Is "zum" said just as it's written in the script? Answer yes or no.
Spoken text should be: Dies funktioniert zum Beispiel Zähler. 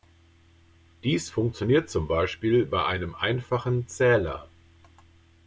yes